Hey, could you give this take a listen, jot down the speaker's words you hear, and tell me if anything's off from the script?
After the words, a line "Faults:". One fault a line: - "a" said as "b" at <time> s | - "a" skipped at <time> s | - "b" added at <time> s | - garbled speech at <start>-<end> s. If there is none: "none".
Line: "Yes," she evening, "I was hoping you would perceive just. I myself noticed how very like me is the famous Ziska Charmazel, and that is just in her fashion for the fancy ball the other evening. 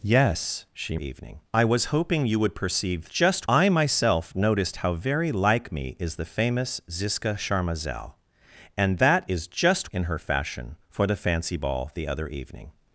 "Yes," she evening, "I was hoping you would perceive just. I myself noticed how very like me is the famous Ziska Charmazel, and that is just in her fashion for the fancy ball the other evening.
Faults:
none